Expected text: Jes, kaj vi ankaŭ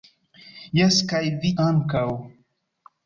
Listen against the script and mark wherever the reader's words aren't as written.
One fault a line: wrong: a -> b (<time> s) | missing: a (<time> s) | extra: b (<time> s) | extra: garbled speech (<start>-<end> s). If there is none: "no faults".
no faults